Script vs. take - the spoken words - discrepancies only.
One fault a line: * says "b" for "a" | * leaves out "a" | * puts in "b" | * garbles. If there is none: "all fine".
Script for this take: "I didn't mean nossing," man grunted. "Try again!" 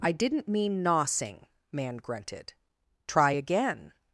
all fine